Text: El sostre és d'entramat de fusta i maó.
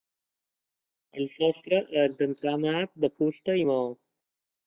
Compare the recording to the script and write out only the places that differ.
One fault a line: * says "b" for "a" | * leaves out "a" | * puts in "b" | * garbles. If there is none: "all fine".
all fine